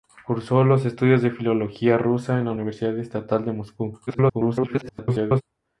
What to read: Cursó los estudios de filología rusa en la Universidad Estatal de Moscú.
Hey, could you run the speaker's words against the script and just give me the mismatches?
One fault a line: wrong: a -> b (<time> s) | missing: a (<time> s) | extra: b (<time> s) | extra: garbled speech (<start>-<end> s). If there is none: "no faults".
extra: garbled speech (4.1-5.4 s)